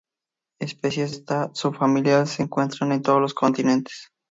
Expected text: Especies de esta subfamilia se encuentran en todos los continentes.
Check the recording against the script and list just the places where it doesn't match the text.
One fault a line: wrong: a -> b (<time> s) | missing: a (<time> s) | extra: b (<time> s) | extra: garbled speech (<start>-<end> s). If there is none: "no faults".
missing: de (1.1 s)